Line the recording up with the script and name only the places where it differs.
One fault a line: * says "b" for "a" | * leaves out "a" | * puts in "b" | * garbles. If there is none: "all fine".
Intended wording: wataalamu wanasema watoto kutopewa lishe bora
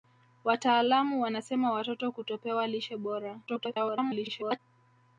* garbles